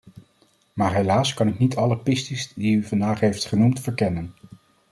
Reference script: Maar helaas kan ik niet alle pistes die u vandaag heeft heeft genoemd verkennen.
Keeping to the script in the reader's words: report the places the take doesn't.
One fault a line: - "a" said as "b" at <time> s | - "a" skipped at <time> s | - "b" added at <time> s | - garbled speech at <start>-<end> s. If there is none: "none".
- "heeft" skipped at 3.5 s